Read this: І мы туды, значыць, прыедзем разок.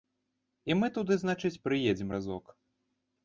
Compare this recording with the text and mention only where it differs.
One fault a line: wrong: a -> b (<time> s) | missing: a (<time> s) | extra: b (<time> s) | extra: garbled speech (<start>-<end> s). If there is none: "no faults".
no faults